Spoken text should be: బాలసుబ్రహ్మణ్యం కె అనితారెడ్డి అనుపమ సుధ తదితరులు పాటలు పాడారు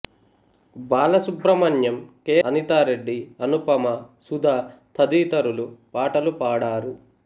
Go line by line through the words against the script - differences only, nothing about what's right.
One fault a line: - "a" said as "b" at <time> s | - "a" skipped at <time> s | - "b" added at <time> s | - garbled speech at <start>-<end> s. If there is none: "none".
none